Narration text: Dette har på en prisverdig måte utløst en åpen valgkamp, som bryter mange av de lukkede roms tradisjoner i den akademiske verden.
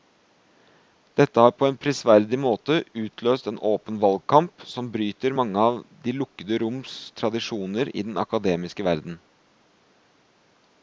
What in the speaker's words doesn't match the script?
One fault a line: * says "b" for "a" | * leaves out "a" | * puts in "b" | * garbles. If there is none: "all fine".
all fine